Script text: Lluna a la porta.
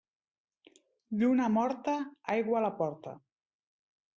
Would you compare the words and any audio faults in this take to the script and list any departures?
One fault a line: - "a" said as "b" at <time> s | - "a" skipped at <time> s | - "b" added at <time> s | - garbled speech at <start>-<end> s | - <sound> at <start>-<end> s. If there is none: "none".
- "morta aigua" added at 1.6 s